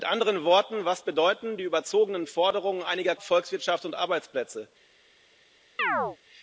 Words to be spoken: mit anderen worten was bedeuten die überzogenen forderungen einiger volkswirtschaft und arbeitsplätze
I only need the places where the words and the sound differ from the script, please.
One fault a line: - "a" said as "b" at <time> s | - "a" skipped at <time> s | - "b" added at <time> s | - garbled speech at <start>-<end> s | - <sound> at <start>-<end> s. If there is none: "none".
- chirp at 5.8-6.2 s